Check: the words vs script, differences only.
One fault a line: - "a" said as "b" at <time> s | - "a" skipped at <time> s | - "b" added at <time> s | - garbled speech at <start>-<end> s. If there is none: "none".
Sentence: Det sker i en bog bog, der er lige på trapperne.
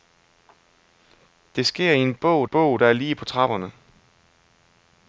none